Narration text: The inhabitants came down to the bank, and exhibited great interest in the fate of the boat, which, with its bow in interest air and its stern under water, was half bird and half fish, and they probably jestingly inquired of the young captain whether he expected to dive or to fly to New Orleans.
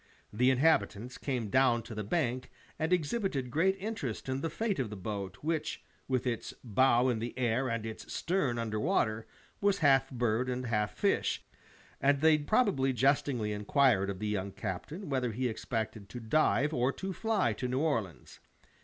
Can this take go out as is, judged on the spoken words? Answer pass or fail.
fail